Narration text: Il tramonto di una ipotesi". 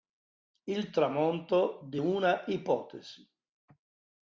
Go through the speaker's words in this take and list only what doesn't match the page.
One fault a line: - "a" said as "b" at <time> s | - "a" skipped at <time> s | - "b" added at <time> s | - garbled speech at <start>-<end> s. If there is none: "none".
none